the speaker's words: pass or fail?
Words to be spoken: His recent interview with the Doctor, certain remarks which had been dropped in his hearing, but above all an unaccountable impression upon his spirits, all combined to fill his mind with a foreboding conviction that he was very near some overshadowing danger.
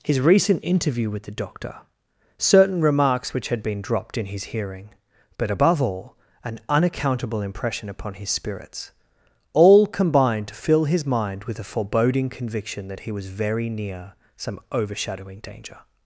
pass